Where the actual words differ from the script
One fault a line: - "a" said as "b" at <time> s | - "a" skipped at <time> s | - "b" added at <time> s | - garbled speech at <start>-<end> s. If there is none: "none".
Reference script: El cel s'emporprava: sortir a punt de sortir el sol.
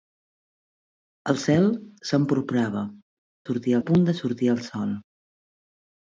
none